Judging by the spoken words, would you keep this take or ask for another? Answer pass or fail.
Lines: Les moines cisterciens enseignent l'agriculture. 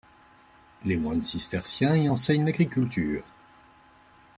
fail